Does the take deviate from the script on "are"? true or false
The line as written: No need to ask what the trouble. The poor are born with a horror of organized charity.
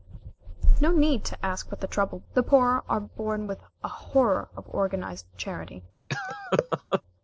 false